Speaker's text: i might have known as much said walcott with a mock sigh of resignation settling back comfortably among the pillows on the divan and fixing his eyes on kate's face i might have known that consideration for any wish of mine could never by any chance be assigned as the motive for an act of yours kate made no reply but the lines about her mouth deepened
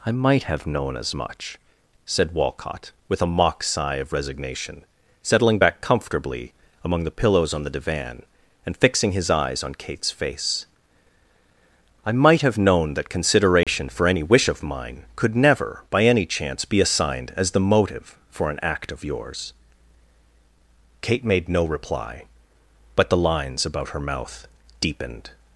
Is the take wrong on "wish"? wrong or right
right